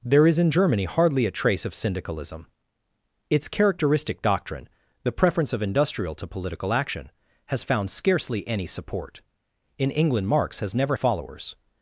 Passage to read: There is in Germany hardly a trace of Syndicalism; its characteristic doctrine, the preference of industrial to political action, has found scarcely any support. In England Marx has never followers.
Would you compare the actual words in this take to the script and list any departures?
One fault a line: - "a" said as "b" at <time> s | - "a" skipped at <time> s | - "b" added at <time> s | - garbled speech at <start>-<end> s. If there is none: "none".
none